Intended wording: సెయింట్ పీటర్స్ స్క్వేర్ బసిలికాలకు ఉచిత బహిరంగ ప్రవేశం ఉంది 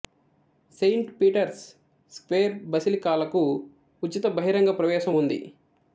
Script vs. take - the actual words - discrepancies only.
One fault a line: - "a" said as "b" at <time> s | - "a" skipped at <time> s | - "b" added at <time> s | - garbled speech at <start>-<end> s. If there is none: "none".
none